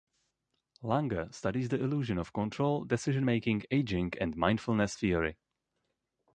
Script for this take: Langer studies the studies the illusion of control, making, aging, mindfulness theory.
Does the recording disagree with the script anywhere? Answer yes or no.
yes